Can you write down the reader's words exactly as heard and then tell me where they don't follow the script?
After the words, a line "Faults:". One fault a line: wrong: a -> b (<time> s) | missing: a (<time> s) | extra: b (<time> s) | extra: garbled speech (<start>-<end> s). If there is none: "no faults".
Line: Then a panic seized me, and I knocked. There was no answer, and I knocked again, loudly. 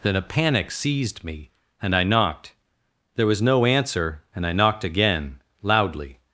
Then a panic seized me, and I knocked. There was no answer, and I knocked again, loudly.
Faults:
no faults